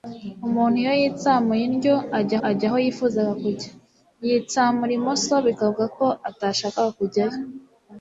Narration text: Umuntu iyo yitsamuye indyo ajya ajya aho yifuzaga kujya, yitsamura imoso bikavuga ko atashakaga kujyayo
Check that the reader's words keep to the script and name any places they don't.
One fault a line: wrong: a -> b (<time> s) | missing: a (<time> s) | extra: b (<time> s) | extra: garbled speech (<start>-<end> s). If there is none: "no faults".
no faults